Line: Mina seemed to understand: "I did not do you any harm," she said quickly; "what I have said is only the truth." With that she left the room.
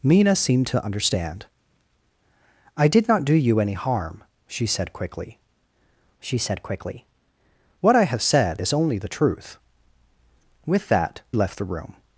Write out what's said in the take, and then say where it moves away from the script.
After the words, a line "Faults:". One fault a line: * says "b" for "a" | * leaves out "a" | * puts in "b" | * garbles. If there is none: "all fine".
Mina seemed to understand: "I did not do you any harm," she said quickly she said quickly; "what I have said is only the truth." With that left the room.
Faults:
* puts in "she said quickly"
* leaves out "she"